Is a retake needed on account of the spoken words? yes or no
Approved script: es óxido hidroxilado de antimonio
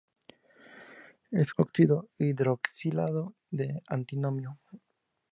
no